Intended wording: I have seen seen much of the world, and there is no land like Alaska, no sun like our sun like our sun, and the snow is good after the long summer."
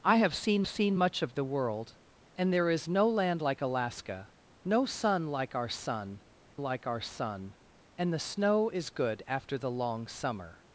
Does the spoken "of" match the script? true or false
true